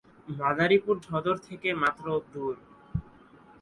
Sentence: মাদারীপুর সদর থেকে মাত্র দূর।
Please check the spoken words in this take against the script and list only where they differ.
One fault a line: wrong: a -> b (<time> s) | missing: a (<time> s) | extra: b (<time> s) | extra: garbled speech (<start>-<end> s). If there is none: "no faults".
no faults